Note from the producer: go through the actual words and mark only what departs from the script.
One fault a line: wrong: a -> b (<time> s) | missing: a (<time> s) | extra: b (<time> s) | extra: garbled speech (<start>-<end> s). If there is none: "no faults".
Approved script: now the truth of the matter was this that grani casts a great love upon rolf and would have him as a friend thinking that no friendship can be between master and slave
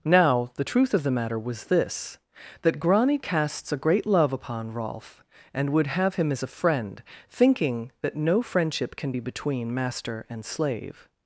no faults